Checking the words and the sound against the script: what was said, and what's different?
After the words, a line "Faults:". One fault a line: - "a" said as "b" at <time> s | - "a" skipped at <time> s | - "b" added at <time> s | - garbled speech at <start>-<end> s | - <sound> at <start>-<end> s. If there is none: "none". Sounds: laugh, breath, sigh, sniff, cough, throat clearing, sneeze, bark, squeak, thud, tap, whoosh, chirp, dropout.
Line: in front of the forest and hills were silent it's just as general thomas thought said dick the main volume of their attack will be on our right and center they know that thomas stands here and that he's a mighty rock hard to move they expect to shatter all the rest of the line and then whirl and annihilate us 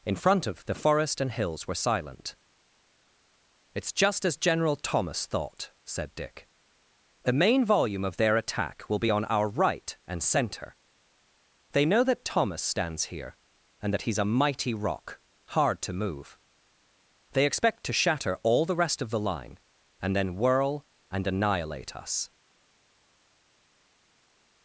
in front of the forest and hills were silent it's just as general thomas thought said dick the main volume of their attack will be on our right and center they know that thomas stands here and that he's a mighty rock hard to move they expect to shatter all the rest of the line and then whirl and annihilate us
Faults:
none